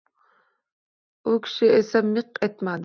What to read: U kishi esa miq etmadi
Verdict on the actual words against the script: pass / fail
pass